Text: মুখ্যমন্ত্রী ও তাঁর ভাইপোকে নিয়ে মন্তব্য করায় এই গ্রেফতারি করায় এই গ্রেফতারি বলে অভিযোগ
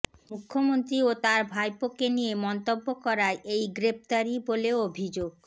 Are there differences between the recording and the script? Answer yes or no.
yes